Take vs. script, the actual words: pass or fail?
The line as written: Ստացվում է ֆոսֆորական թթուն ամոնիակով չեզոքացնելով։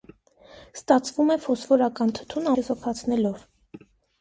fail